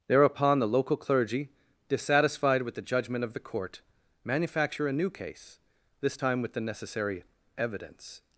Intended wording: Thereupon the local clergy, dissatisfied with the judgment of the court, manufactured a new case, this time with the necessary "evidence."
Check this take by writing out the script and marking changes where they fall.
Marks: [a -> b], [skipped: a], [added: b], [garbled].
Thereupon the local clergy, dissatisfied with the judgment of the court, [manufactured -> manufacture] a new case, this time with the necessary "evidence."